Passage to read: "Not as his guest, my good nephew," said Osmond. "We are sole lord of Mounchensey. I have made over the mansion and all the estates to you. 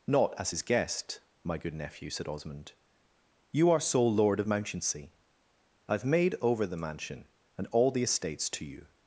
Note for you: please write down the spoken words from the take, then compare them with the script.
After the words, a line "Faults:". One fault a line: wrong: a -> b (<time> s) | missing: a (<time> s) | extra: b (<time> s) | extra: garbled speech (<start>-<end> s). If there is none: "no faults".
"Not as his guest, my good nephew," said Osmond. "You are sole lord of Mounchensey. I have made over the mansion and all the estates to you.
Faults:
wrong: We -> You (3.5 s)